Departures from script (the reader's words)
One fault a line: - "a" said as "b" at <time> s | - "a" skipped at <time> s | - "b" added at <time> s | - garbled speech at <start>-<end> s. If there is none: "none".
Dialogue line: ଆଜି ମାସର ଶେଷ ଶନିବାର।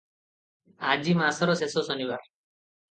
none